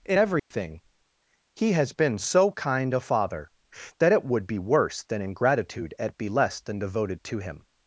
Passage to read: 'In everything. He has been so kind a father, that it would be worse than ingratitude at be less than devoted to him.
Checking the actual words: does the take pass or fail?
pass